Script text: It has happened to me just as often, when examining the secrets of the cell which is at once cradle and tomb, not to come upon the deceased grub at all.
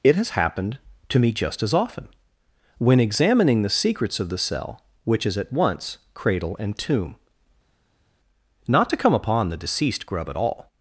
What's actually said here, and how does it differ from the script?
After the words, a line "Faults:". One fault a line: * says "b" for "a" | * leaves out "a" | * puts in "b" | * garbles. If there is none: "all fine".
It has happened to me just as often, when examining the secrets of the cell which is at once cradle and tomb, not to come upon the deceased grub at all.
Faults:
all fine